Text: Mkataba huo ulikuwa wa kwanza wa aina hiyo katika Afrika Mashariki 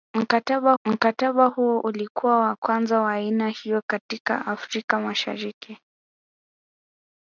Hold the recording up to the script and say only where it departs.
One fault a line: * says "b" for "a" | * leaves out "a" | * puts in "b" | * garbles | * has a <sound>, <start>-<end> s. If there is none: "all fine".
* puts in "mkataba"